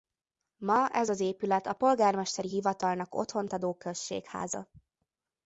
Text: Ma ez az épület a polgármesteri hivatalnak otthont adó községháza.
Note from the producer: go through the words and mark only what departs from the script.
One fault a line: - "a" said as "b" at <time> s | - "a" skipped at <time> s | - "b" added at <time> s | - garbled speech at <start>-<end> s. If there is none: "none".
none